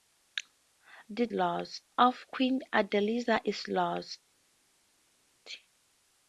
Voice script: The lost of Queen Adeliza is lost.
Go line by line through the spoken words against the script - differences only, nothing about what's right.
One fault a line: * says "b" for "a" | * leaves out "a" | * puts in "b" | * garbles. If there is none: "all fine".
all fine